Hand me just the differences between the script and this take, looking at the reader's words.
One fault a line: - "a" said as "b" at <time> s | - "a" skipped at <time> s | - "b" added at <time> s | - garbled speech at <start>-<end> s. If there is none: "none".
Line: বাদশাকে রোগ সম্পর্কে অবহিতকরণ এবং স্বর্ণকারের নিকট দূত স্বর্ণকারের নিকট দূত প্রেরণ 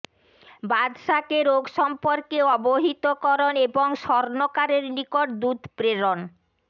- "স্বর্ণকারের নিকট দূত" skipped at 5.6 s